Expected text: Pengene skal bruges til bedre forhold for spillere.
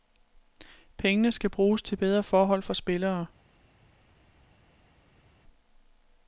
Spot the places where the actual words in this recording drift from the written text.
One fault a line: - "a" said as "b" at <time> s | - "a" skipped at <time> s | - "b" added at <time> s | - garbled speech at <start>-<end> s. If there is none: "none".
none